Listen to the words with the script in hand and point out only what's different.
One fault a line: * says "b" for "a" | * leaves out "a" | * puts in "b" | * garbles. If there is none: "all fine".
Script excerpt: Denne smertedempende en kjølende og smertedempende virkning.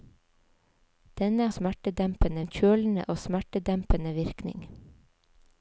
all fine